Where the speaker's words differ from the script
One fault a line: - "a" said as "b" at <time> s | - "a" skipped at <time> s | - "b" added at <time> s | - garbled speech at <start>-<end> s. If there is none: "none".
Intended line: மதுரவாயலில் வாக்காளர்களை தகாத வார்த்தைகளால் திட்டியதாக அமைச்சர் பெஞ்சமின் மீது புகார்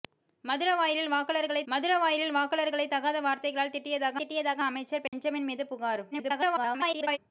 - "மதுரவாயலில் வாக்காளர்களை" added at 1.7 s
- "திட்டியதாக" added at 4.2 s
- garbled speech at 6.1-7.2 s